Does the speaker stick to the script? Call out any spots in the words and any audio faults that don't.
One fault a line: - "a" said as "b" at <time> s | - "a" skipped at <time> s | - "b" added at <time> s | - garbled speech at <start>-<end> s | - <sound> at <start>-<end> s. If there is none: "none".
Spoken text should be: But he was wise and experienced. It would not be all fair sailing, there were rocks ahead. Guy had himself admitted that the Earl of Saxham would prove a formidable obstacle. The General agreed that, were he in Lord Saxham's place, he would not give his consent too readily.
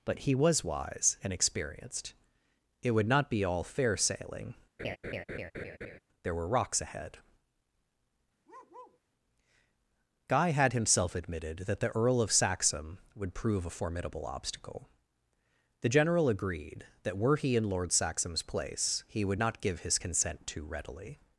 - laugh at 4.8-6.0 s
- bark at 8.5-9.0 s